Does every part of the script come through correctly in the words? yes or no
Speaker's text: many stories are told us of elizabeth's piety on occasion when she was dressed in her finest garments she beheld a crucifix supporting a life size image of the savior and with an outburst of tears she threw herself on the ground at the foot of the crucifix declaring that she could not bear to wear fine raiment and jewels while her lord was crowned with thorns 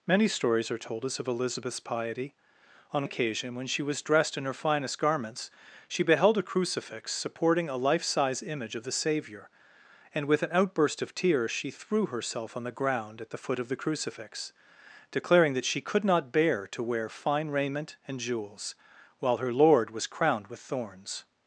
yes